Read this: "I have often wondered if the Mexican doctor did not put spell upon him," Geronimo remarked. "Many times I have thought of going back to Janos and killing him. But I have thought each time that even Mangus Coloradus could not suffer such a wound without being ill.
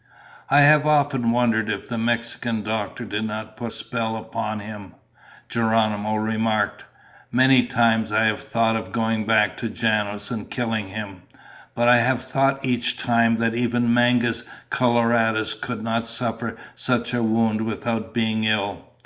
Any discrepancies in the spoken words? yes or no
no